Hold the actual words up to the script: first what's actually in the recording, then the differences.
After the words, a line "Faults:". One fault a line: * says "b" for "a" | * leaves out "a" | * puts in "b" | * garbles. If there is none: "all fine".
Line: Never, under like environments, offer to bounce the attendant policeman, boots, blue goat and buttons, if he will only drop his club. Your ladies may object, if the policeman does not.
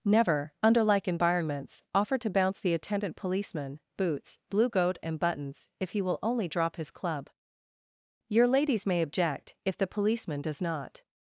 Never, under like environments, offer to bounce the attendant policeman, boots, blue goat and buttons, if he will only drop his club. Your ladies may object, if the policeman does not.
Faults:
all fine